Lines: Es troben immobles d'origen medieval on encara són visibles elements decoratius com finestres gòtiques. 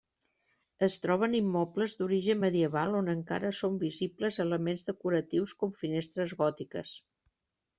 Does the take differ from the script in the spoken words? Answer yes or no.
no